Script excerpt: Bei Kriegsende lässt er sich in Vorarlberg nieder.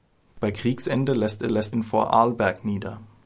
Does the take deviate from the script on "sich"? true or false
true